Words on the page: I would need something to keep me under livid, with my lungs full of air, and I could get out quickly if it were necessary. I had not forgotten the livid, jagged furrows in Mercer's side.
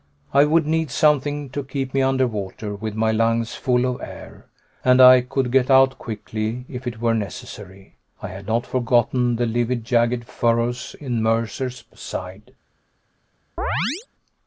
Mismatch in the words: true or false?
true